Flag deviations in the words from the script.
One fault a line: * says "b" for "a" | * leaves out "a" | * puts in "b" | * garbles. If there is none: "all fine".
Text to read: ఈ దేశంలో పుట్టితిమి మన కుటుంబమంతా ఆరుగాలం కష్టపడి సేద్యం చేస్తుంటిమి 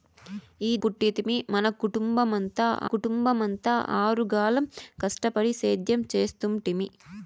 * leaves out "దేశంలో"
* puts in "కుటుంబమంతా"